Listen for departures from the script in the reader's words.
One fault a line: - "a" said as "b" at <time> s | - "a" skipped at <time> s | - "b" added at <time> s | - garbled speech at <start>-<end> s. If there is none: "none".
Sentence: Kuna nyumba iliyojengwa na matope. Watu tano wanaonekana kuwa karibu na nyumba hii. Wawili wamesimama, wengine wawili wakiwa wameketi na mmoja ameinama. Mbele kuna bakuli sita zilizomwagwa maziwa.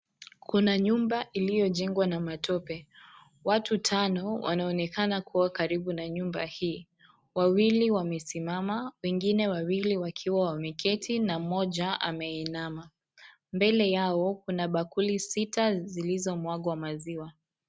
- "yao" added at 13.9 s